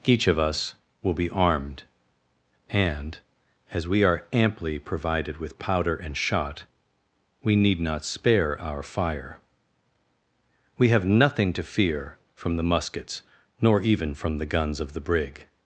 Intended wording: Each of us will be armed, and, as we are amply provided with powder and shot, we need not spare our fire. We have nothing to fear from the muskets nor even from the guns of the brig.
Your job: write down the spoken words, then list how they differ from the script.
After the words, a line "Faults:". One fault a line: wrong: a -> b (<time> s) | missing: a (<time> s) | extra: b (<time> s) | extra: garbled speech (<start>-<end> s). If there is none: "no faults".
Each of us will be armed, and, as we are amply provided with powder and shot, we need not spare our fire. We have nothing to fear from the muskets nor even from the guns of the brig.
Faults:
no faults